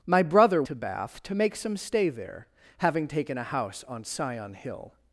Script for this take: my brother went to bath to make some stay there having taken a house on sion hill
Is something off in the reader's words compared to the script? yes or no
yes